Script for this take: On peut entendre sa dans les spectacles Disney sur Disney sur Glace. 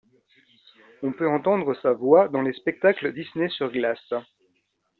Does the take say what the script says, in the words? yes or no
no